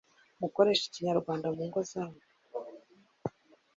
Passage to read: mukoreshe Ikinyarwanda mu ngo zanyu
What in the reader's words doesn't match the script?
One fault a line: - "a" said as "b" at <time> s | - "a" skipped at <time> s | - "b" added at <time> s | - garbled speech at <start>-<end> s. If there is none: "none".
none